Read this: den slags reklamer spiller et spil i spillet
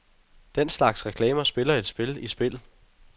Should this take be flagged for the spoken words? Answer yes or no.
no